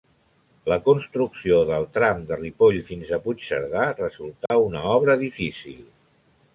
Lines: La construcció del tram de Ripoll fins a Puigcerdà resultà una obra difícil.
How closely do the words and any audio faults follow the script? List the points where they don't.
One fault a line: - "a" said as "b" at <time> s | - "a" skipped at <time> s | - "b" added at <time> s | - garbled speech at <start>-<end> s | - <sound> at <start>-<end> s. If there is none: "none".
- dropout at 4.5-4.5 s